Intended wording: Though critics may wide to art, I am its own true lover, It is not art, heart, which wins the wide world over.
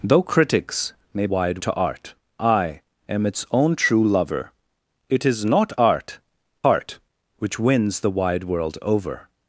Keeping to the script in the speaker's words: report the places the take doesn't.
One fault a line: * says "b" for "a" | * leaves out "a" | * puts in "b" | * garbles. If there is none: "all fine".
all fine